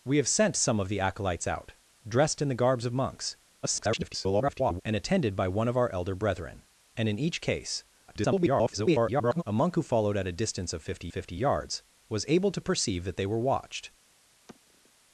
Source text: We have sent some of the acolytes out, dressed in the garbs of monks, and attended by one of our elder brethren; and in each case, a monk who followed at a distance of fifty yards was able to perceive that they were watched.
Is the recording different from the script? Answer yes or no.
yes